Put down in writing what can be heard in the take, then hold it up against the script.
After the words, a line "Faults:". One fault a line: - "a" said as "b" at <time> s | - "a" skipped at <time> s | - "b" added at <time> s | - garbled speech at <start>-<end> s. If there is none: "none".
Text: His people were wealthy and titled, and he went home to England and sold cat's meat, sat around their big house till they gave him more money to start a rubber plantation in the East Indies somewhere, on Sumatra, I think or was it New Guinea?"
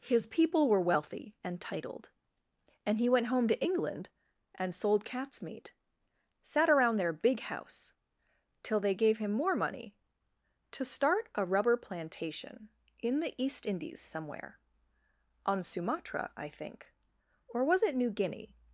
His people were wealthy and titled, and he went home to England and sold cat's meat, sat around their big house till they gave him more money to start a rubber plantation in the East Indies somewhere, on Sumatra, I think or was it New Guinea?"
Faults:
none